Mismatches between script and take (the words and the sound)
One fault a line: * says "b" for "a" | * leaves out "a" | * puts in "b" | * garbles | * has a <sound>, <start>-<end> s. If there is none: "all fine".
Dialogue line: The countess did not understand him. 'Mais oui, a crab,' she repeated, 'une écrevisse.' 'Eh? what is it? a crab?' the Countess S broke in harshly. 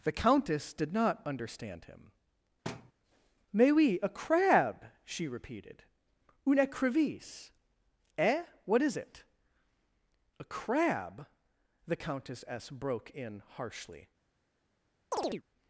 * has a thud, 2.6-2.9 s
* has a chirp, 15.1-15.4 s